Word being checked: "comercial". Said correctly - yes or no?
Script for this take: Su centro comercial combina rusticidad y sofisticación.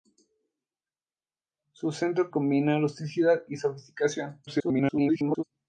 no